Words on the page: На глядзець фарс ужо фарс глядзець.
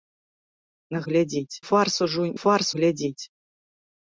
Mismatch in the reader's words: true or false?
false